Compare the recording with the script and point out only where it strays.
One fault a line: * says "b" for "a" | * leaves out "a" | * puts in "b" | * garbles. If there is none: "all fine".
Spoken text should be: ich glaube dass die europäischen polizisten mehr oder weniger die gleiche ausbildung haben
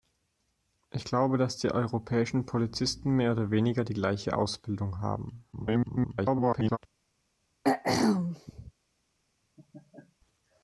* garbles